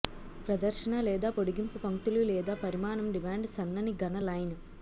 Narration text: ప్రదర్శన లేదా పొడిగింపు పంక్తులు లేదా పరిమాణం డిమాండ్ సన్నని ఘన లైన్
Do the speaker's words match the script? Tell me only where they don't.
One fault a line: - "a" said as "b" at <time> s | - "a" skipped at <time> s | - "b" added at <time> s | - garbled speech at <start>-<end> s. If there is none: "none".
none